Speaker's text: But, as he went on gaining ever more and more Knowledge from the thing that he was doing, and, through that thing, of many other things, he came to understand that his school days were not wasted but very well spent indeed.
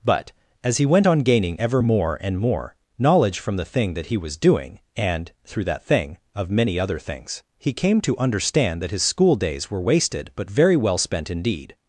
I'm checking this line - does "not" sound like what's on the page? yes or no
no